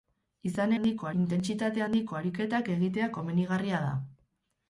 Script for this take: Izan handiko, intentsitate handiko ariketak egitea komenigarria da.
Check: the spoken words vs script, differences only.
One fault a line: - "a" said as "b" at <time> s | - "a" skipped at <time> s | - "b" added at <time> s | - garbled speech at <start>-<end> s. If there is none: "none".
none